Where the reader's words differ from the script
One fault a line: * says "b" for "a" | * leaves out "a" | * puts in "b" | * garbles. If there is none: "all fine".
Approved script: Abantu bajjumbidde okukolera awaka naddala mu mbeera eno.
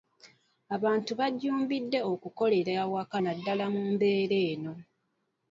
all fine